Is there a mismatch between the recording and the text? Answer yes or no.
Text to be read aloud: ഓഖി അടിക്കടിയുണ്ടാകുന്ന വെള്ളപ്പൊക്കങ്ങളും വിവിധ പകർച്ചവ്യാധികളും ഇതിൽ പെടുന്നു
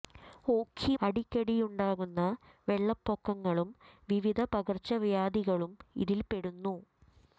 no